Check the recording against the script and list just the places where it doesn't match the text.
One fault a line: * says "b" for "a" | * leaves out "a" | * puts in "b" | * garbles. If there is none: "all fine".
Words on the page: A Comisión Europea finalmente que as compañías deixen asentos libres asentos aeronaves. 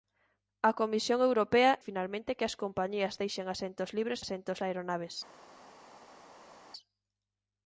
all fine